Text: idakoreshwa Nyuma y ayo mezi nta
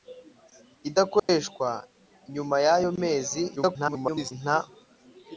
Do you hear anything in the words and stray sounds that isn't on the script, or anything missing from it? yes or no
yes